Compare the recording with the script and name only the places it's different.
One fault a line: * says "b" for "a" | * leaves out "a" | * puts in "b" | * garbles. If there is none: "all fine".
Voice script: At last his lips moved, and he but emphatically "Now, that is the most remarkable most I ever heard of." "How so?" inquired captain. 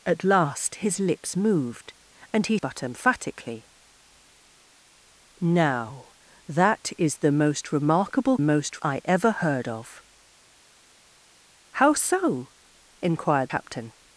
all fine